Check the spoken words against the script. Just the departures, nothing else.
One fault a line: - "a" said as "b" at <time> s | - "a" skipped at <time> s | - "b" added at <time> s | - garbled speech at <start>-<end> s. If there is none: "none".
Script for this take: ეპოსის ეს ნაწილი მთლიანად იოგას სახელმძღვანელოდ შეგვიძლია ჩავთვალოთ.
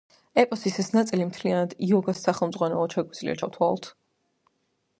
none